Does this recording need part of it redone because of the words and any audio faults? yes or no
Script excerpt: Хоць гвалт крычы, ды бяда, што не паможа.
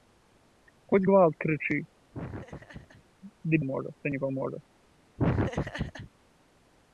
yes